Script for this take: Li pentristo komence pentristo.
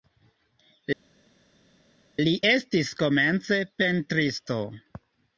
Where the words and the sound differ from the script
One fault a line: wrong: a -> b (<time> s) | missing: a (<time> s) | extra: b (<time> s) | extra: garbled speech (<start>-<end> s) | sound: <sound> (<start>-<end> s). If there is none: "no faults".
wrong: pentristo -> estis (2.5 s)